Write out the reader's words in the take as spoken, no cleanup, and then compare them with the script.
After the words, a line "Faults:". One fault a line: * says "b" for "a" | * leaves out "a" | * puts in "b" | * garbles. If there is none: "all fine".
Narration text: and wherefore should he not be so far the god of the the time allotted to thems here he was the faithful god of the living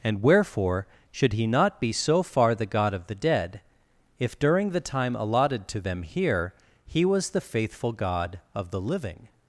and wherefore should he not be so far the god of the dead if during the time allotted to them here he was the faithful god of the living
Faults:
* puts in "dead if during"
* says "them" for "thems"